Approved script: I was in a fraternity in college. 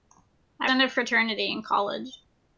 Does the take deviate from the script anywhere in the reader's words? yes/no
yes